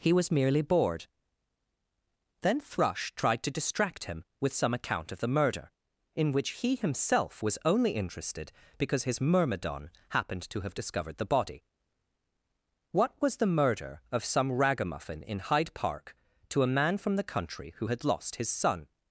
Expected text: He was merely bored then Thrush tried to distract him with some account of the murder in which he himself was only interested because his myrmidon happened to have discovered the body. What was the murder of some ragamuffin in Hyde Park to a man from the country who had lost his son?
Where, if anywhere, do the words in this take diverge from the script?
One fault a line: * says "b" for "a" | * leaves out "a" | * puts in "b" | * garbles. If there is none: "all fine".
all fine